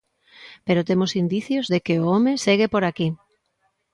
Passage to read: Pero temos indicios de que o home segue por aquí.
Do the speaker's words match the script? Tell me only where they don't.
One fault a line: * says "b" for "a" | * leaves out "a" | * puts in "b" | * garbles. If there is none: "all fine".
all fine